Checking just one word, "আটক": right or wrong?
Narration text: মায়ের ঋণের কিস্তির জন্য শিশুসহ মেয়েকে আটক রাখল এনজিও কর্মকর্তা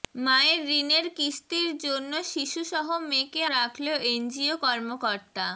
wrong